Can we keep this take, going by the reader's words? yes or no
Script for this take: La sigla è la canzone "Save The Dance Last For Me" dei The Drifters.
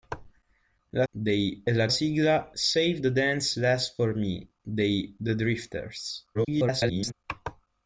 no